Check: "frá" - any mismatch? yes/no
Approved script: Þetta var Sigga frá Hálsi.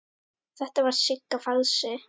yes